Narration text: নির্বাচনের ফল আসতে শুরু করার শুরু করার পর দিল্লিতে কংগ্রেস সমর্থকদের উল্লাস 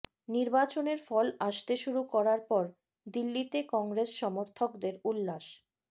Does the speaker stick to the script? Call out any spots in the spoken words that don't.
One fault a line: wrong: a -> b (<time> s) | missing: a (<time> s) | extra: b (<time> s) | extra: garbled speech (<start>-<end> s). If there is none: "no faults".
missing: শুরু করার (2.4 s)